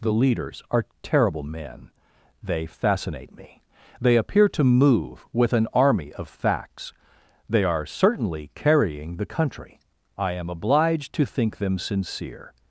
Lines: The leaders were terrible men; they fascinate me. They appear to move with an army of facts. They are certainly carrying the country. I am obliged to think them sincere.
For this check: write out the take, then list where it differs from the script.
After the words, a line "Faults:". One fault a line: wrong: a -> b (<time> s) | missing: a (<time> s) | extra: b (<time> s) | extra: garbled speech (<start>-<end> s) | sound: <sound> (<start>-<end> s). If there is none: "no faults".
The leaders are terrible men; they fascinate me. They appear to move with an army of facts. They are certainly carrying the country. I am obliged to think them sincere.
Faults:
wrong: were -> are (0.7 s)